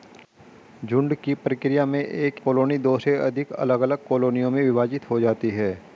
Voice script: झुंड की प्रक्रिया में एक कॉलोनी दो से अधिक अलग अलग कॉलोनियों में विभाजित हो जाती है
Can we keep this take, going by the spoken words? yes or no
yes